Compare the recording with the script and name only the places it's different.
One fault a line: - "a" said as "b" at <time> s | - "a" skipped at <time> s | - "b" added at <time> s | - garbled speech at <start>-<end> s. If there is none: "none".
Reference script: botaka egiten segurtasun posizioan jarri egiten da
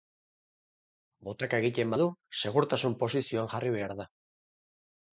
- "badu" added at 1.9 s
- "egiten" said as "behar" at 3.8 s